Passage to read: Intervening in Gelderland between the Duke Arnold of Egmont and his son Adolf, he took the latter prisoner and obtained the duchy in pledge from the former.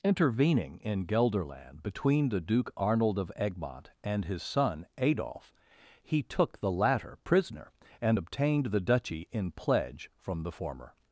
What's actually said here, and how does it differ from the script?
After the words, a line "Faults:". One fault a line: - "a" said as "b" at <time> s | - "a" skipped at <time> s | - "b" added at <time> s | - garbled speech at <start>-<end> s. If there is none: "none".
Intervening in Gelderland between the Duke Arnold of Egmont and his son Adolf, he took the latter prisoner and obtained the duchy in pledge from the former.
Faults:
none